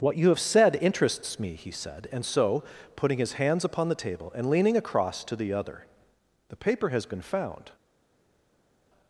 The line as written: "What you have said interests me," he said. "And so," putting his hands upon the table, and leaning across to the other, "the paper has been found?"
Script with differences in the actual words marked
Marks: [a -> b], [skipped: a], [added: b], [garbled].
"What you have said interests me," he said. "And so," putting his hands upon the table, and leaning across to the other, "the paper has been found?"